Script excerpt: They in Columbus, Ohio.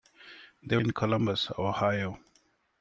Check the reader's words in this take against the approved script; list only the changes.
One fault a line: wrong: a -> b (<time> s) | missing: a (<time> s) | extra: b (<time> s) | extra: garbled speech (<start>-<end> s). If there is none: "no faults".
no faults